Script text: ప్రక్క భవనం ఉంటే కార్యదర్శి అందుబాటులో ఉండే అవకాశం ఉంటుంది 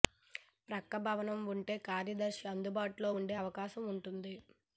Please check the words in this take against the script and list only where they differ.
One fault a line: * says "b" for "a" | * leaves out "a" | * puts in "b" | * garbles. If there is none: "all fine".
all fine